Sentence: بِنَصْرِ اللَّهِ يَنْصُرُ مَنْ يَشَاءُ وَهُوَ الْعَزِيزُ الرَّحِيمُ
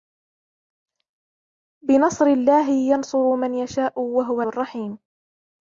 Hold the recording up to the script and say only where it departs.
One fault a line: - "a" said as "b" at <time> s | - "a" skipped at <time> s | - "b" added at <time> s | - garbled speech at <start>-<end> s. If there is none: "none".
- "الْعَزِيزُ" skipped at 4.4 s